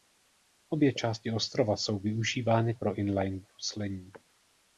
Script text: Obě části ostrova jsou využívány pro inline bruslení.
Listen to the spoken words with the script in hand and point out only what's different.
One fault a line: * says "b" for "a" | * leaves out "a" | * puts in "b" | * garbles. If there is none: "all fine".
all fine